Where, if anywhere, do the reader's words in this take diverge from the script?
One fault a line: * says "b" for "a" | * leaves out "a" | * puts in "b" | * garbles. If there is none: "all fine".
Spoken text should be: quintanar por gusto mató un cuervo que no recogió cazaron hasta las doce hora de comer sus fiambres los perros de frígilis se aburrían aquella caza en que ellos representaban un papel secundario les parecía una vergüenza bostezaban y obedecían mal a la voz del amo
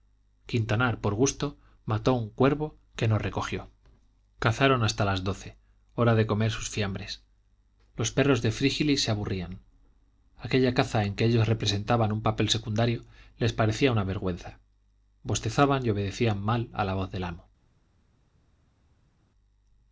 all fine